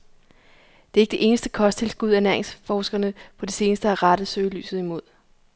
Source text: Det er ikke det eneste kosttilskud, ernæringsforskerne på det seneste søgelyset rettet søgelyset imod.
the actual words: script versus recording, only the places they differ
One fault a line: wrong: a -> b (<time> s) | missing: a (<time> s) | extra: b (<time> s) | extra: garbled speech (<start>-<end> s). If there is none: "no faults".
wrong: søgelyset -> har (3.9 s)